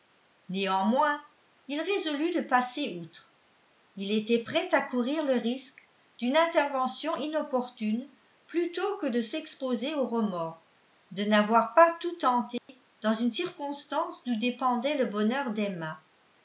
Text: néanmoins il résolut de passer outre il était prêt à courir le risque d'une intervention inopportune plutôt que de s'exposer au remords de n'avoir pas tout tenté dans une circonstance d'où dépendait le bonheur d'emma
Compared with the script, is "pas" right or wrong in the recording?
right